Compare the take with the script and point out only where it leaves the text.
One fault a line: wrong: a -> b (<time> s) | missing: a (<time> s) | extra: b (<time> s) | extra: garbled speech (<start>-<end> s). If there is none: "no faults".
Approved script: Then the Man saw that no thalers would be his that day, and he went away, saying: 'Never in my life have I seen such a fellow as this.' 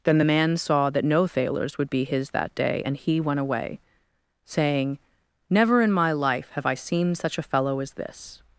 no faults